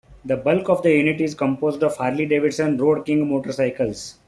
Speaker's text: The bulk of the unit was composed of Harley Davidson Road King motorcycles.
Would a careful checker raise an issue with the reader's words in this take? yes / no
yes